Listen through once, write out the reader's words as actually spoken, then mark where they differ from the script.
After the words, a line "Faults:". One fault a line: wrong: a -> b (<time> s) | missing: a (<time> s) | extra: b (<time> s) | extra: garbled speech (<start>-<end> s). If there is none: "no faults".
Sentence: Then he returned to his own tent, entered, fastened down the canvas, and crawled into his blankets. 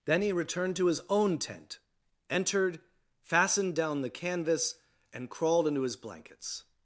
Then he returned to his own tent, entered, fastened down the canvas, and crawled into his blankets.
Faults:
no faults